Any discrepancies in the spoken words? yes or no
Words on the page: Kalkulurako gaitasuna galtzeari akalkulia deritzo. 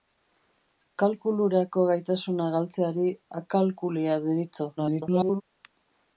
yes